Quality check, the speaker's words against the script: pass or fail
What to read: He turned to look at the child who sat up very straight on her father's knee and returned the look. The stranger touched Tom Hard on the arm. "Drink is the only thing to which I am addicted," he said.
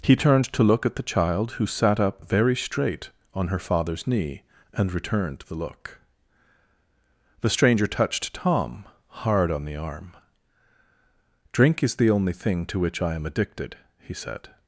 pass